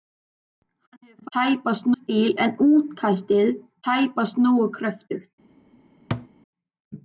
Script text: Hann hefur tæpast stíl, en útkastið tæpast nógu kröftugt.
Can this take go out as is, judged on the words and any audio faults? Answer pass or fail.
fail